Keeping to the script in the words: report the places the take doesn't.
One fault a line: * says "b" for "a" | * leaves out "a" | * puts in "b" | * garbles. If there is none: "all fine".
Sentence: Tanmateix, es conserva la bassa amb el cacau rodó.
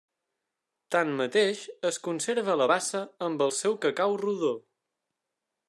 * puts in "seu"